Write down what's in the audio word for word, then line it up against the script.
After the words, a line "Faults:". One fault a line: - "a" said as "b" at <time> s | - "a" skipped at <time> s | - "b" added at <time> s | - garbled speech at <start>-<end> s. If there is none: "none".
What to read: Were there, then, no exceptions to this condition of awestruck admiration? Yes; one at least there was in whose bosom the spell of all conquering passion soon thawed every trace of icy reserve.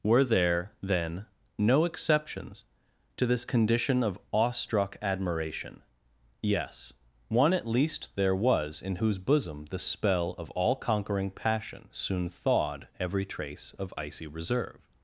Were there, then, no exceptions to this condition of awestruck admiration? Yes; one at least there was in whose bosom the spell of all conquering passion soon thawed every trace of icy reserve.
Faults:
none